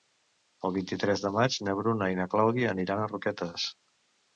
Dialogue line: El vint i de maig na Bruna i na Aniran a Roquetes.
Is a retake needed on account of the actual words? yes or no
yes